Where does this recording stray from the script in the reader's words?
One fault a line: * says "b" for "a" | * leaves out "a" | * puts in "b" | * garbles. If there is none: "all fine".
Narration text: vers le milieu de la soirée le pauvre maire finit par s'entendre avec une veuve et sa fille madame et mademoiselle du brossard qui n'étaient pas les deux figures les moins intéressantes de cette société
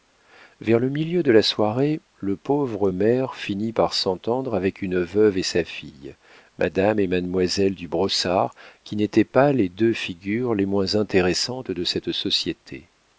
all fine